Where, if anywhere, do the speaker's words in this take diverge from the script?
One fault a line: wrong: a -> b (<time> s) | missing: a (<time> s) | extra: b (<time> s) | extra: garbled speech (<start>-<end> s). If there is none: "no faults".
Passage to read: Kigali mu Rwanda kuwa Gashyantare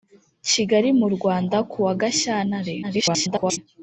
extra: garbled speech (2.8-3.6 s)